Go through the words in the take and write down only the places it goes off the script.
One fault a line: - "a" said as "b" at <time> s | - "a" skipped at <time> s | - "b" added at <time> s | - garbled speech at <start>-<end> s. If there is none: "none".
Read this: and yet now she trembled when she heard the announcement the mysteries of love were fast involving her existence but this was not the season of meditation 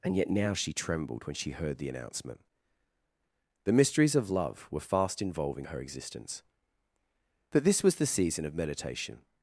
- "not" skipped at 8.0 s